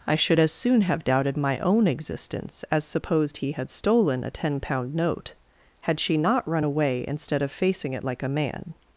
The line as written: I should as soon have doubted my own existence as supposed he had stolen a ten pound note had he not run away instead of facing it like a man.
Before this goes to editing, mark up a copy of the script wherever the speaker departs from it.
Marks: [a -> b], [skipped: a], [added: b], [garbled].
I should as soon have doubted my own existence as supposed he had stolen a ten pound note had [he -> she] not run away instead of facing it like a man.